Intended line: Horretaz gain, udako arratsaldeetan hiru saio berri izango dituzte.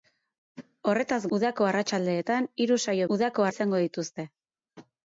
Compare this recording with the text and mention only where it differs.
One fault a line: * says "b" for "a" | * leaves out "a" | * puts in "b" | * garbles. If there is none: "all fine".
* leaves out "gain"
* says "udako" for "berri"